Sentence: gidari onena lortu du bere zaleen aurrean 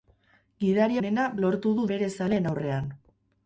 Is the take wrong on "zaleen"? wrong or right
right